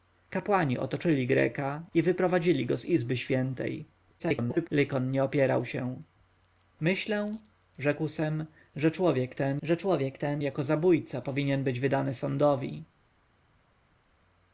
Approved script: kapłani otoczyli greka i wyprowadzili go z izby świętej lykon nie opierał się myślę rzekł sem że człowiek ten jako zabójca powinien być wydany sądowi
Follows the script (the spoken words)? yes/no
no